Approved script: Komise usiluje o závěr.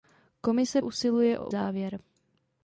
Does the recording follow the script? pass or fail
pass